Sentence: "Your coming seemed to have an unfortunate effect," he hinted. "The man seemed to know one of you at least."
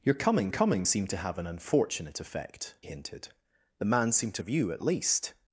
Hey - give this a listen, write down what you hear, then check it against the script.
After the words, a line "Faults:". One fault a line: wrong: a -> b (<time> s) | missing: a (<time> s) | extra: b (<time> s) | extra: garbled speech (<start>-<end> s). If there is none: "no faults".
"Your coming coming seemed to have an unfortunate effect," hinted. "The man seemed to of you at least."
Faults:
extra: coming (0.5 s)
missing: he (2.7 s)
missing: know one (4.4 s)